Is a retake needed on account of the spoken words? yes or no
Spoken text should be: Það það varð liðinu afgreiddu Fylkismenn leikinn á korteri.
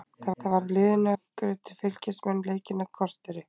no